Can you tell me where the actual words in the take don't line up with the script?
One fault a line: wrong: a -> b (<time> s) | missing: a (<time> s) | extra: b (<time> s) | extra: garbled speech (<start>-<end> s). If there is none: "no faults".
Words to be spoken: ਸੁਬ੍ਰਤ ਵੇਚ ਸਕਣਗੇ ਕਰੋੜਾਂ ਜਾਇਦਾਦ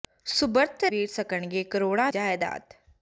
no faults